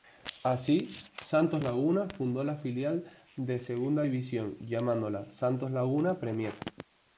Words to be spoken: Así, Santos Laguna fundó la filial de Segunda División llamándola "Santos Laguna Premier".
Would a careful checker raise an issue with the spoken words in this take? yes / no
no